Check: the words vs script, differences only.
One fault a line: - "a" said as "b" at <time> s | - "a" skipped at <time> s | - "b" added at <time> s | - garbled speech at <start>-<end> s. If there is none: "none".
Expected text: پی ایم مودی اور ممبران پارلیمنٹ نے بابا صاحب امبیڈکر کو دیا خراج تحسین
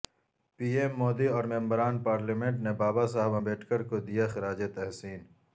none